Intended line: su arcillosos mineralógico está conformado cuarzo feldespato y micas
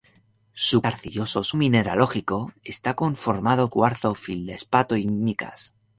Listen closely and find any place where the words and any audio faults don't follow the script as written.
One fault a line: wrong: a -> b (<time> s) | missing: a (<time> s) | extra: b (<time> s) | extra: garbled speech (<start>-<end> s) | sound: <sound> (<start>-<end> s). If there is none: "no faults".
no faults